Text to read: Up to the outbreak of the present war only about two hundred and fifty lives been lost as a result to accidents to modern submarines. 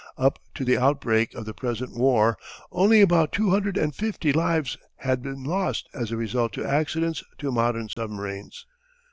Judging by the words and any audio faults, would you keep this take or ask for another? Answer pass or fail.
fail